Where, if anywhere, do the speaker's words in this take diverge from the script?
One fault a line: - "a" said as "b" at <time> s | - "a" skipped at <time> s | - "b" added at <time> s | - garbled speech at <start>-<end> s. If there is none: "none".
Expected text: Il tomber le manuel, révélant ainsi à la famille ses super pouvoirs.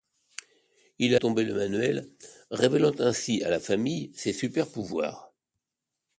none